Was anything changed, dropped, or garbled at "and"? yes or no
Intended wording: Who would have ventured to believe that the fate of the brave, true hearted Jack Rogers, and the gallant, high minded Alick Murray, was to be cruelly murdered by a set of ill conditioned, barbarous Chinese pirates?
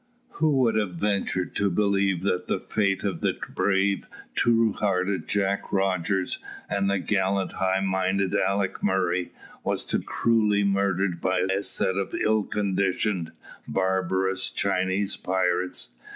no